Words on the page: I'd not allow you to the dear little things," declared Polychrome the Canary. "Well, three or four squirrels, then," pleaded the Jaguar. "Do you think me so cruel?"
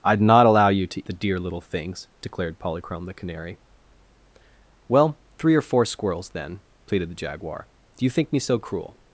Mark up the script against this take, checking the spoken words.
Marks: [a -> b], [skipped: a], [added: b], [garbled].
I'd not allow you to the dear little things," declared Polychrome the Canary. "Well, three or four squirrels, then," pleaded the Jaguar. "Do you think me so cruel?"